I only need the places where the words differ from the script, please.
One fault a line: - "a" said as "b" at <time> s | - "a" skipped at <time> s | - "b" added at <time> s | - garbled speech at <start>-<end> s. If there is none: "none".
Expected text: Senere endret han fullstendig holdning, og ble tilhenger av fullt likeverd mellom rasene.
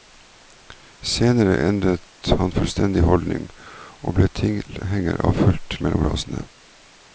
- "likeverd" skipped at 5.8 s